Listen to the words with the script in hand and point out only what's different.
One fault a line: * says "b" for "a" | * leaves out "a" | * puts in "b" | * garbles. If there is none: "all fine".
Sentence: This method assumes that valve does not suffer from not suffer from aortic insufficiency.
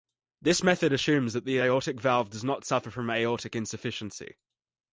* puts in "the aortic"
* leaves out "not suffer from"